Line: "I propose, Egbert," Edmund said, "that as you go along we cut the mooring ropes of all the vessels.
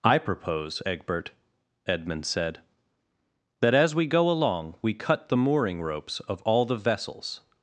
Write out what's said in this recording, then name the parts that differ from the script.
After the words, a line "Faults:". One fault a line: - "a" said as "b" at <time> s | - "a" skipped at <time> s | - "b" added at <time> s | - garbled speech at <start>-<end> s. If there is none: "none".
"I propose, Egbert," Edmund said, "that as we go along we cut the mooring ropes of all the vessels.
Faults:
- "you" said as "we" at 3.9 s